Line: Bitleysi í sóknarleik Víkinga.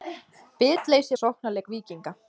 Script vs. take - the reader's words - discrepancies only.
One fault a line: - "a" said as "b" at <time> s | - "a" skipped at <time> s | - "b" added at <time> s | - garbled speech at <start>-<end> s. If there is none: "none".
none